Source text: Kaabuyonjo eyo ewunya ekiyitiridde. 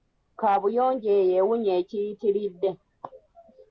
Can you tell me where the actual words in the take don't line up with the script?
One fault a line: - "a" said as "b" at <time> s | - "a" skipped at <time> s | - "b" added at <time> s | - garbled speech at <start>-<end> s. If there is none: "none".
none